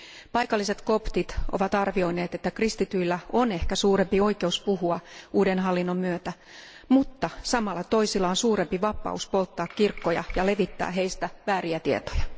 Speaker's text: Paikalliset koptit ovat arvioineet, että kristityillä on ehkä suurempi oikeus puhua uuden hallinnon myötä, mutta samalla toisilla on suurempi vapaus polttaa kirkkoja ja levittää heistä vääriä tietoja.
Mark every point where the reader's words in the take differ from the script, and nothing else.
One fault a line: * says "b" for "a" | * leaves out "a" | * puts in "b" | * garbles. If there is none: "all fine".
all fine